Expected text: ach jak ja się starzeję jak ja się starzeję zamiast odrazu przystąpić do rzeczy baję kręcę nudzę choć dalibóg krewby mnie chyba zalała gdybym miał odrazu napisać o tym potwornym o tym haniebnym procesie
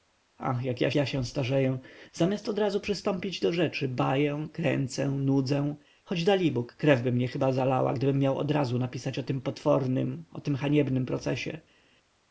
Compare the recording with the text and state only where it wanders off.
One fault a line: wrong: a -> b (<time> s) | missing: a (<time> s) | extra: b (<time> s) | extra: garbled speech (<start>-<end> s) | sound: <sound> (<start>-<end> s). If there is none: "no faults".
missing: się starzeję jak (0.9 s)